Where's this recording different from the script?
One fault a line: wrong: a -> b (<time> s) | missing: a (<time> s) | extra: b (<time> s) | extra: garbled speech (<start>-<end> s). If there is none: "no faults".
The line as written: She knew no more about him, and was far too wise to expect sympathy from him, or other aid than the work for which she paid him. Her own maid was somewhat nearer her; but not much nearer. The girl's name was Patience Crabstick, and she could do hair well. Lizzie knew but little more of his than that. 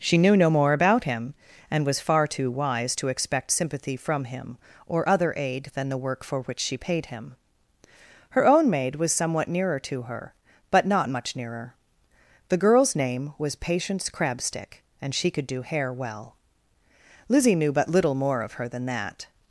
extra: to (9.8 s)
wrong: his -> her (18.5 s)